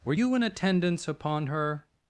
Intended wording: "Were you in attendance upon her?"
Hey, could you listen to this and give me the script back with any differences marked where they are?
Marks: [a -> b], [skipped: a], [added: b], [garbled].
"Were you in attendance upon her?"